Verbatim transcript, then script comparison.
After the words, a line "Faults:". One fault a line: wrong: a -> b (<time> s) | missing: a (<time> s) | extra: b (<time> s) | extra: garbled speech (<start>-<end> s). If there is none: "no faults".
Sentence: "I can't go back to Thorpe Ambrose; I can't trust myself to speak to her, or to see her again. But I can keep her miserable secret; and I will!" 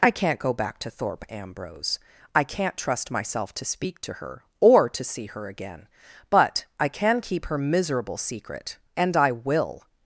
"I can't go back to Thorpe Ambrose; I can't trust myself to speak to her, or to see her again. But I can keep her miserable secret; and I will!"
Faults:
no faults